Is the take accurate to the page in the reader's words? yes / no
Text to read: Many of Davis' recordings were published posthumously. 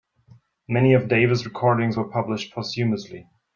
yes